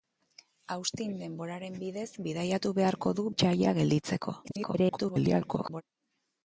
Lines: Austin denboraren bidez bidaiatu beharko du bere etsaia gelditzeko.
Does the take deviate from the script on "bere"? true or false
true